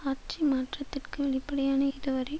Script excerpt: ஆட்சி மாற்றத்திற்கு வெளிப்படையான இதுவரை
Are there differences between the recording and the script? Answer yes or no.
no